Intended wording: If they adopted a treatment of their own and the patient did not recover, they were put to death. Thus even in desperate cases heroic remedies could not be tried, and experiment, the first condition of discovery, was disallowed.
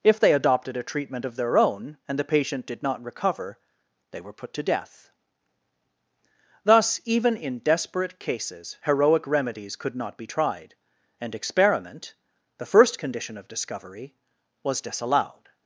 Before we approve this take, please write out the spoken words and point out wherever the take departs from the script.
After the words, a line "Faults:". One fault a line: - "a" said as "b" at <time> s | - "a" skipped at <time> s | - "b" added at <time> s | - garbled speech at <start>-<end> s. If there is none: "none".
If they adopted a treatment of their own and the patient did not recover, they were put to death. Thus even in desperate cases heroic remedies could not be tried, and experiment, the first condition of discovery, was disallowed.
Faults:
none